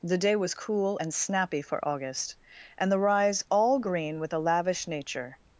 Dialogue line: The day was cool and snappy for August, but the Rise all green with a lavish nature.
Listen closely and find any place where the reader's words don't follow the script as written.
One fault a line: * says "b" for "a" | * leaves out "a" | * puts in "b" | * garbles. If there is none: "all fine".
* says "and" for "but"